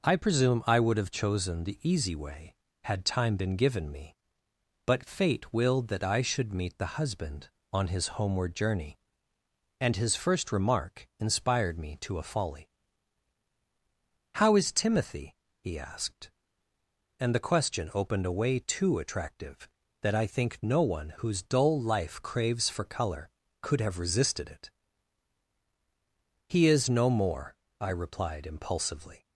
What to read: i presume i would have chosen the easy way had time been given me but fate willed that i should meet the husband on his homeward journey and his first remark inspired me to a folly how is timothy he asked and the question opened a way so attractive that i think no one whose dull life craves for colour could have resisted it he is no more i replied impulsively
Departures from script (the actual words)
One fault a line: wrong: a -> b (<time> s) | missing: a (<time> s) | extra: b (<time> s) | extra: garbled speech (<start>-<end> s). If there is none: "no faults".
wrong: so -> too (18.6 s)